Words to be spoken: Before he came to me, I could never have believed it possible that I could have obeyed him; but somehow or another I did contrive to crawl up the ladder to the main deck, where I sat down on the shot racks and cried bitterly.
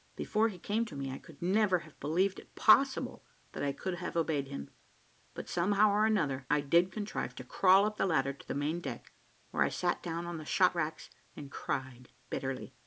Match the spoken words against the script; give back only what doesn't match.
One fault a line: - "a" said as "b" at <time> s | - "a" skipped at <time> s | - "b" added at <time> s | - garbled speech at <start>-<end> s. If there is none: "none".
none